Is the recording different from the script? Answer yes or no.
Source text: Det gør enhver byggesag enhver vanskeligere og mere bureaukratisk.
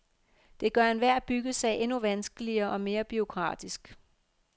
yes